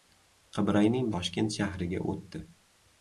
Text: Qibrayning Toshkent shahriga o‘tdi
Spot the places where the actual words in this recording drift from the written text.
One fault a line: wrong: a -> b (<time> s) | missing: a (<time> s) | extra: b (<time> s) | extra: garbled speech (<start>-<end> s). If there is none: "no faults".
no faults